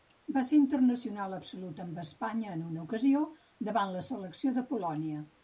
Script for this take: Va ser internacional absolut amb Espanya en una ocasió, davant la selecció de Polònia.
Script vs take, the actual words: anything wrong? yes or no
no